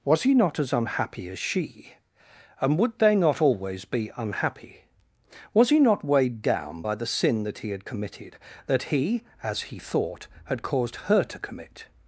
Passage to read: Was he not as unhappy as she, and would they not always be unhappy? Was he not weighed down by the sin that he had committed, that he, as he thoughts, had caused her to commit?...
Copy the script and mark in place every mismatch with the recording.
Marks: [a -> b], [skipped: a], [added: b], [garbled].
Was he not as unhappy as she, and would they not always be unhappy? Was he not weighed down by the sin that he had committed, that he, as he [thoughts, -> thought] had caused her to commit?...